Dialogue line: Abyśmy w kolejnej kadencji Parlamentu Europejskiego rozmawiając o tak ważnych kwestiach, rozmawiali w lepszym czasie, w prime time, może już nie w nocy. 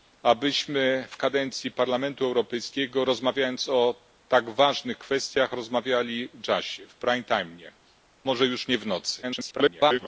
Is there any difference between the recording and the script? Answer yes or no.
yes